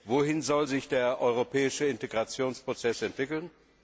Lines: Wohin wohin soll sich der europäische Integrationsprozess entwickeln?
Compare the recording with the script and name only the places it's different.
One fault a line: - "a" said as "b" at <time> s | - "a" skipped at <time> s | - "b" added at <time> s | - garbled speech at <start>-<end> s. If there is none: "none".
- "wohin" skipped at 0.4 s